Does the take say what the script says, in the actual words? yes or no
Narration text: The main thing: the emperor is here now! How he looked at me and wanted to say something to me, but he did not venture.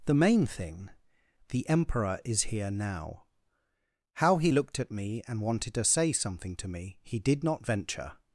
no